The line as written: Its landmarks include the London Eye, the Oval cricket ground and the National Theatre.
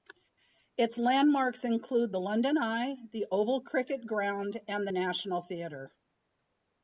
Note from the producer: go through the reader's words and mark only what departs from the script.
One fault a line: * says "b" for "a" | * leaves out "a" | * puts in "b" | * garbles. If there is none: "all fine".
all fine